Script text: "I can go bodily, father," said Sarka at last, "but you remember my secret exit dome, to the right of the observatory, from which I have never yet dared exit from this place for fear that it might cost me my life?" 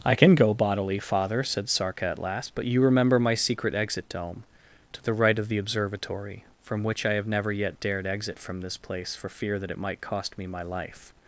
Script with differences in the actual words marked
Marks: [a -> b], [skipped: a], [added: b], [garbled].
"I can go bodily, father," said Sarka at last, "but you remember my secret exit dome, to the right of the observatory, from which I have never yet dared exit from this place for fear that it might cost me my life?"